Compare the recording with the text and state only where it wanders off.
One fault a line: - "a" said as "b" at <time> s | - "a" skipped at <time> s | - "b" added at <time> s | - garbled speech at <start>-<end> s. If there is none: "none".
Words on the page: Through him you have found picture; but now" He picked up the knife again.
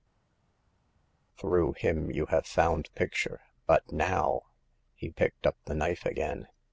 none